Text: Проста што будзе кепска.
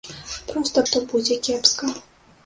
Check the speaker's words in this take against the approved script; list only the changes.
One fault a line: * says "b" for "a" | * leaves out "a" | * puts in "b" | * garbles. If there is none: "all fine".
all fine